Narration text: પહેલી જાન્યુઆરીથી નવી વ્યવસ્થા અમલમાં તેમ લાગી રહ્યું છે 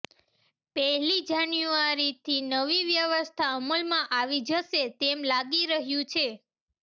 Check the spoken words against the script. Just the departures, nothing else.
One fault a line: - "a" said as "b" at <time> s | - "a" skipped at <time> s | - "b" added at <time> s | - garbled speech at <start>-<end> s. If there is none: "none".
- "આવી જશે" added at 4.1 s